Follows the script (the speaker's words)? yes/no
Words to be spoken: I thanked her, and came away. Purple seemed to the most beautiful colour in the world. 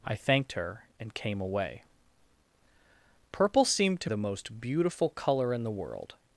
yes